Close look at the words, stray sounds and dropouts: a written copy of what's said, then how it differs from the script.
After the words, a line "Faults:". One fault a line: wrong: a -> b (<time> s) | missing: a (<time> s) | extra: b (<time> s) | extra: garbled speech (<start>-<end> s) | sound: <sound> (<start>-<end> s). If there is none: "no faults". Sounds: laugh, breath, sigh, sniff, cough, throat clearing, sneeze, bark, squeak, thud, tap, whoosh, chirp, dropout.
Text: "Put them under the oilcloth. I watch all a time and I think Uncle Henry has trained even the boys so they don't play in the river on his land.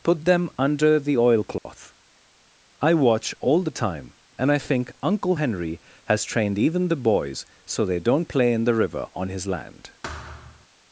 "Put them under the oilcloth. I watch all the time and I think Uncle Henry has trained even the boys so they don't play in the river on his land.
Faults:
sound: dropout (1.6-1.7 s)
wrong: a -> the (3.6 s)
sound: thud (10.0-10.7 s)